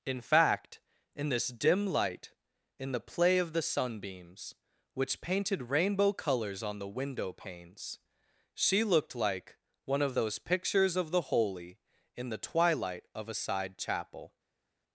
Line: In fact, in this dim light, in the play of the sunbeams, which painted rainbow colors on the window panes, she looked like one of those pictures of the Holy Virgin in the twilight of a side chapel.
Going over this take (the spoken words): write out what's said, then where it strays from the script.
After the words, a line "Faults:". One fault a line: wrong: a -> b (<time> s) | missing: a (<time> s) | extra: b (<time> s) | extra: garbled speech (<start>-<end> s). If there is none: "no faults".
In fact, in this dim light, in the play of the sunbeams, which painted rainbow colors on the window panes, she looked like one of those pictures of the Holy in the twilight of a side chapel.
Faults:
missing: Virgin (11.8 s)